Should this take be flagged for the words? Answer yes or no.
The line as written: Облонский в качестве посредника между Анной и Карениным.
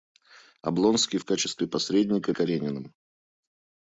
yes